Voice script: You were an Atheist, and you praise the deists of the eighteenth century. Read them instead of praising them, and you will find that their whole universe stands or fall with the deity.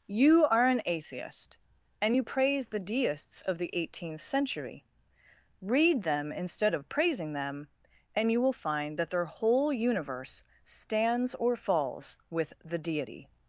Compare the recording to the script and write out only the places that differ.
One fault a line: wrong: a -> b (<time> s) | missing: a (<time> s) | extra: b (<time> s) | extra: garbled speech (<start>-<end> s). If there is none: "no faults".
wrong: were -> are (0.5 s)
wrong: fall -> falls (11.5 s)